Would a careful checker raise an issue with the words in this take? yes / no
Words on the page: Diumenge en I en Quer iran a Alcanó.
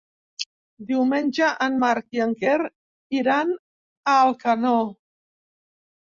yes